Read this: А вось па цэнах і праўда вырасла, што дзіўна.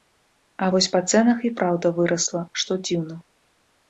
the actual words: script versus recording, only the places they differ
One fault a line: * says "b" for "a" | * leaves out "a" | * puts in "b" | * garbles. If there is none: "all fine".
all fine